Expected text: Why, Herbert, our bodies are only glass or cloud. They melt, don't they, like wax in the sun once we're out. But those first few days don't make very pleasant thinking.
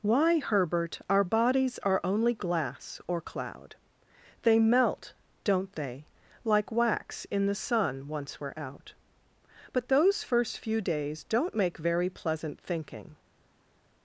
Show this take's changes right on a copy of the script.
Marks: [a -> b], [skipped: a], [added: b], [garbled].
Why, Herbert, our bodies are only glass or cloud. They melt, don't they, like wax in the sun once we're out. But those first few days don't make very pleasant thinking.